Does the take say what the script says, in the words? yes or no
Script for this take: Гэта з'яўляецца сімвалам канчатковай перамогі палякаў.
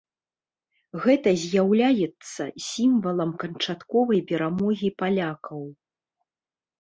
yes